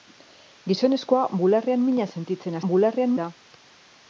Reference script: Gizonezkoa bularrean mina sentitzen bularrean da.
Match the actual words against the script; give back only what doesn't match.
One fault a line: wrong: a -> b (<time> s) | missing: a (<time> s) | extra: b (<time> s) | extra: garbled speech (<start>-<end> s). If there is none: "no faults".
no faults